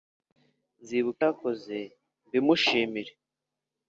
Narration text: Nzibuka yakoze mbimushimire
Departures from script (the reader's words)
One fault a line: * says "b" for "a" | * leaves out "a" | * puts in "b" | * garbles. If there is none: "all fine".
all fine